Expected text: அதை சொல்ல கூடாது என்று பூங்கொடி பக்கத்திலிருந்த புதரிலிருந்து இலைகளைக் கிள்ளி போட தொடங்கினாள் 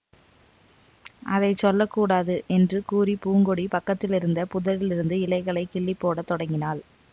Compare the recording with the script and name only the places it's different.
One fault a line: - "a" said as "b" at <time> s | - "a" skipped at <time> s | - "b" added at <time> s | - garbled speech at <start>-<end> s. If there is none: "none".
- "கூறி" added at 2.9 s